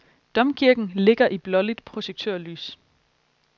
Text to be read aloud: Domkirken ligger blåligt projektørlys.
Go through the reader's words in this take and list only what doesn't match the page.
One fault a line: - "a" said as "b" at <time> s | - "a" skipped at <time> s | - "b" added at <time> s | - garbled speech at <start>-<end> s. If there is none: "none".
- "i" added at 1.3 s